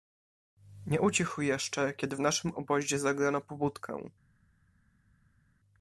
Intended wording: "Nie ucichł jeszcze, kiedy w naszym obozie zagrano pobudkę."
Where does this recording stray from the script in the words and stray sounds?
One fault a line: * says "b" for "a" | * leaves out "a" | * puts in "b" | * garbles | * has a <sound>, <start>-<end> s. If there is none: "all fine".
all fine